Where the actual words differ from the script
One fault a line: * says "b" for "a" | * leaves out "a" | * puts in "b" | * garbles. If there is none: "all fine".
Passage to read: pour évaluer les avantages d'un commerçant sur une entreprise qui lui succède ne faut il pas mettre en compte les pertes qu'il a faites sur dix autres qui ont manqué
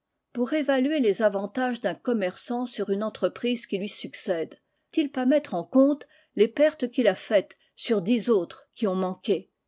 * leaves out "ne faut"